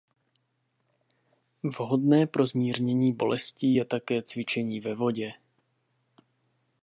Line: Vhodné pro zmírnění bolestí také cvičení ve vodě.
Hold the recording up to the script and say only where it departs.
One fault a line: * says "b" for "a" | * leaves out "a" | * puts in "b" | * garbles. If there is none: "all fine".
* puts in "je"